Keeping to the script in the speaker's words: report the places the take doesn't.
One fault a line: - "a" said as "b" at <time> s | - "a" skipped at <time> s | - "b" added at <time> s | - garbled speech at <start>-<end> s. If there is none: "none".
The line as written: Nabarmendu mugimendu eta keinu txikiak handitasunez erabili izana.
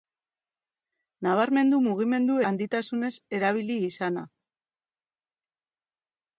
- "eta keinu txikiak" skipped at 2.4 s